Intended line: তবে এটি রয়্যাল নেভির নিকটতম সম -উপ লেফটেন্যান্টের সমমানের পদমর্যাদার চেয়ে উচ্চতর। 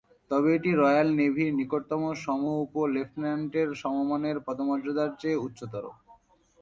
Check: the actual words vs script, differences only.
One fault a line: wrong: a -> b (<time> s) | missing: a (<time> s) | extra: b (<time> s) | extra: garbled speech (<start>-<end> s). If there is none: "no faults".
no faults